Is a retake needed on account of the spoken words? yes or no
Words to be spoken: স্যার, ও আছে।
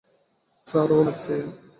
no